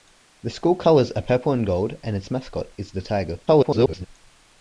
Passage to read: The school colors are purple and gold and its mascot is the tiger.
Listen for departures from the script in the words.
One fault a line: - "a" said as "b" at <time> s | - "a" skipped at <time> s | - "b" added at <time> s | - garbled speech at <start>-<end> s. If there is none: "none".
- garbled speech at 3.5-4.1 s